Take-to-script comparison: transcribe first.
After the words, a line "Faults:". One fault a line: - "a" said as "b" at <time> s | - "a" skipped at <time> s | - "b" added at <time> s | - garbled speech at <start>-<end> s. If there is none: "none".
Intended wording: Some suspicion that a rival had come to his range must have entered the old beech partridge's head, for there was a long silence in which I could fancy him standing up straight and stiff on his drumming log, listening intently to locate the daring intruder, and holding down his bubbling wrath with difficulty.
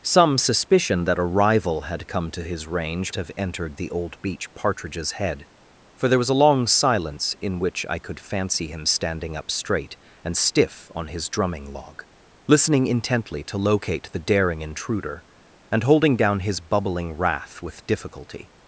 Some suspicion that a rival had come to his range have entered the old beech partridge's head, for there was a long silence in which I could fancy him standing up straight and stiff on his drumming log, listening intently to locate the daring intruder, and holding down his bubbling wrath with difficulty.
Faults:
- "must" skipped at 3.1 s